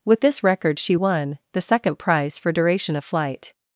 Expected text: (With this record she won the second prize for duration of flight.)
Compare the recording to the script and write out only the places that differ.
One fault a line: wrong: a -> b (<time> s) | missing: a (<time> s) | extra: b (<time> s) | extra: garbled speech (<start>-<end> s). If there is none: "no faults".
no faults